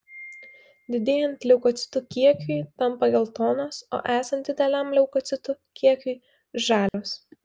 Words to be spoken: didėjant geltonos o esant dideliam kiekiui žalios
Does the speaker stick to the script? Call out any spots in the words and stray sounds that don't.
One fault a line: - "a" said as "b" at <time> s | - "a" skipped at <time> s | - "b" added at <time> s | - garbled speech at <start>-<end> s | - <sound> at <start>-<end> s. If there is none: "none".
- "leukocitų kiekiui tampa" added at 1.5 s
- "leukocitų" added at 5.0 s
- dropout at 6.9-6.9 s